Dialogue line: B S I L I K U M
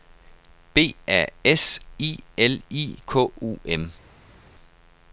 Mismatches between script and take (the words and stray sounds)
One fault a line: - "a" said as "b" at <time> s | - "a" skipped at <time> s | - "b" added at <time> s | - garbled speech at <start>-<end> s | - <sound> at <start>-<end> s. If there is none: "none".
- "A" added at 1.1 s